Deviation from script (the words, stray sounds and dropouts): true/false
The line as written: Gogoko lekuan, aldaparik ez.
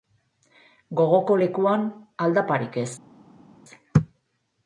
false